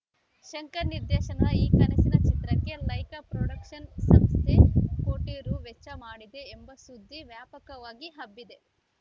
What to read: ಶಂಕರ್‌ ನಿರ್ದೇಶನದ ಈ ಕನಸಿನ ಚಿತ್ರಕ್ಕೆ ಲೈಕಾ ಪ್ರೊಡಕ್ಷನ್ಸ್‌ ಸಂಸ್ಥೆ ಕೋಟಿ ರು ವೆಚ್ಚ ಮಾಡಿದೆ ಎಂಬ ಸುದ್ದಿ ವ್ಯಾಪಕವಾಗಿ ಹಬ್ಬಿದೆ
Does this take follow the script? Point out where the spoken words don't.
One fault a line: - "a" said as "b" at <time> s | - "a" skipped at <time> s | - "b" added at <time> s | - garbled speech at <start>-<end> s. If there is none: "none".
none